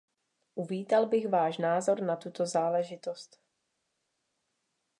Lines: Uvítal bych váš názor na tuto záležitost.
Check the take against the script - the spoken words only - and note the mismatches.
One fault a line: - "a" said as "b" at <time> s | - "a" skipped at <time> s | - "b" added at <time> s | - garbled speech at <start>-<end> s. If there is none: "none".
none